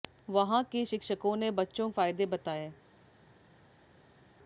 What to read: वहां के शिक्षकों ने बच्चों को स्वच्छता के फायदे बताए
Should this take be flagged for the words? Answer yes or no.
yes